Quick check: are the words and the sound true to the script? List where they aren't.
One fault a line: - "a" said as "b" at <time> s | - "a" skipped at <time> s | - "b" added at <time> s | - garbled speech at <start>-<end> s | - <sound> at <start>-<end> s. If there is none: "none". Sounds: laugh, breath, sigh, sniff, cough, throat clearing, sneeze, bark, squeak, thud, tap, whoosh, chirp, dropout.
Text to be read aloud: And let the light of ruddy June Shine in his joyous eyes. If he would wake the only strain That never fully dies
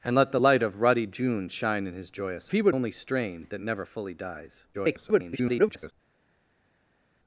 - "eyes If" skipped at 2.5 s
- "wake the" skipped at 2.8 s
- garbled speech at 4.7-5.9 s